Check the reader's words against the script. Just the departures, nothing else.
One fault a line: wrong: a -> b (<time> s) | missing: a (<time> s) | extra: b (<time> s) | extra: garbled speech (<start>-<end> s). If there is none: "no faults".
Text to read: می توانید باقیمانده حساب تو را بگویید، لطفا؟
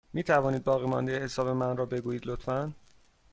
wrong: تو -> من (1.5 s)